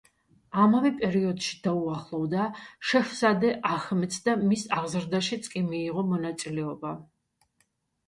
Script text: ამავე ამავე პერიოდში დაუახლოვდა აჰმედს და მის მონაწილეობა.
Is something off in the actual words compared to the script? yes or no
yes